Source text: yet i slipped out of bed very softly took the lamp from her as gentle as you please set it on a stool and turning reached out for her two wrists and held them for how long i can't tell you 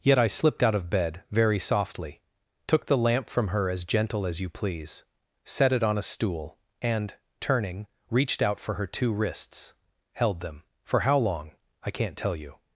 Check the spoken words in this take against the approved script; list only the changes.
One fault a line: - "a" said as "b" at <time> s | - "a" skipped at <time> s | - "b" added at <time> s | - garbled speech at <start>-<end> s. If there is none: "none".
- "and" skipped at 9.7 s